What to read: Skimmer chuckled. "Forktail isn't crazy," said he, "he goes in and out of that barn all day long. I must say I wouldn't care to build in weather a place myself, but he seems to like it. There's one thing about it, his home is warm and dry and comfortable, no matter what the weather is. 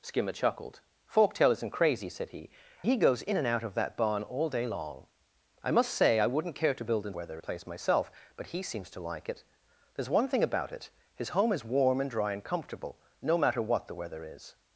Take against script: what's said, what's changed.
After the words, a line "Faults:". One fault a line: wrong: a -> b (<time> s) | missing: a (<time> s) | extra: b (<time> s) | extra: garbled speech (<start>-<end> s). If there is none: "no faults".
Skimmer chuckled. "Forktail isn't crazy," said he, "he goes in and out of that barn all day long. I must say I wouldn't care to build in weather a place myself, but he seems to like it. There's one thing about it, his home is warm and dry and comfortable, no matter what the weather is.
Faults:
no faults